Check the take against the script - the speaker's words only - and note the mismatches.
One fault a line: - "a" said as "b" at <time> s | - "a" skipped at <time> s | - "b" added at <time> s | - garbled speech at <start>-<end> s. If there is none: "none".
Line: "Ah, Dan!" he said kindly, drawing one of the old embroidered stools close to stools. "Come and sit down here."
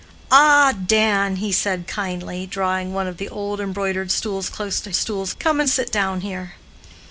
none